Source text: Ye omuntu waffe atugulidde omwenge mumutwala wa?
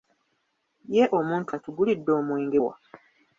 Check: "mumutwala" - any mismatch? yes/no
yes